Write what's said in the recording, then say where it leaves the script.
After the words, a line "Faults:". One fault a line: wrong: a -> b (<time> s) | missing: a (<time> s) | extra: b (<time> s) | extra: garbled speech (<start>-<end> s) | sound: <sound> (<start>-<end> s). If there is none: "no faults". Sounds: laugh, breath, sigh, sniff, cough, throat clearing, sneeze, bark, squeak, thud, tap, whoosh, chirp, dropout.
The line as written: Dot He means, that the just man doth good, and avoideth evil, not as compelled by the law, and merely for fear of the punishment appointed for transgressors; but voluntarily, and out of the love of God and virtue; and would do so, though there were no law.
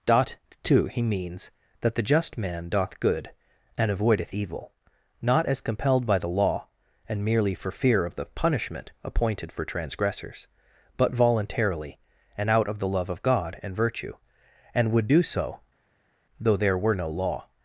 Dot two He means, that the just man doth good, and avoideth evil, not as compelled by the law, and merely for fear of the punishment appointed for transgressors; but voluntarily, and out of the love of God and virtue; and would do so, though there were no law.
Faults:
extra: two (0.6 s)